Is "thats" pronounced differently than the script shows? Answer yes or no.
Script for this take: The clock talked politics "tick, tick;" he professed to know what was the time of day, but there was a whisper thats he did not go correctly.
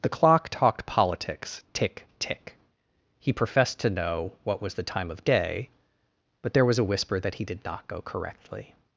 yes